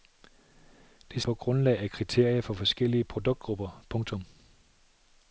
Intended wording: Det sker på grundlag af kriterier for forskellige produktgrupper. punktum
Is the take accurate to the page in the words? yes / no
no